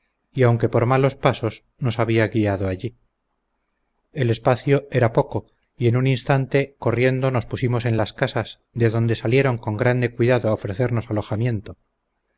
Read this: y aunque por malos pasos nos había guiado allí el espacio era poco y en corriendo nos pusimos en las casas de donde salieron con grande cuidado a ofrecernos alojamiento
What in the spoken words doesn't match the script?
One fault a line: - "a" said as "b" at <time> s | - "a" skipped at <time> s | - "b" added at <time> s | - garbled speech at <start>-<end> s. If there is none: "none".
- "un instante" added at 6.0 s